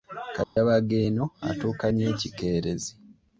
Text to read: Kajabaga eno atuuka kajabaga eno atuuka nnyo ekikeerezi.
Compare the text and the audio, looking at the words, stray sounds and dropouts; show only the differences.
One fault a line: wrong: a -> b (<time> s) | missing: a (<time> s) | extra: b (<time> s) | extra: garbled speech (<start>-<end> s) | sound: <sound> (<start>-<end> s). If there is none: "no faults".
sound: dropout (0.4-0.6 s)
missing: kajabaga eno atuuka (1.9 s)